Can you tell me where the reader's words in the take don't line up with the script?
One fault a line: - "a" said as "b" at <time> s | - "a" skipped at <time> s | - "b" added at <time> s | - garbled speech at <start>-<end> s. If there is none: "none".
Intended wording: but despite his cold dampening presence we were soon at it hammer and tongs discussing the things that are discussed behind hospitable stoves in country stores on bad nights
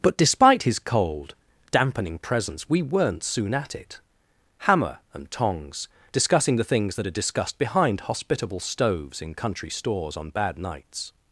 - "were" said as "weren't" at 2.8 s